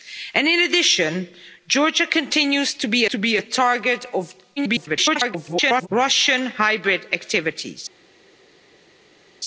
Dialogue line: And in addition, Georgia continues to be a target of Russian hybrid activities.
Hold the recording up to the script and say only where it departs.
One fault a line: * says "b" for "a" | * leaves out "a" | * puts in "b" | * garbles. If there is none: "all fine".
* puts in "to be"
* garbles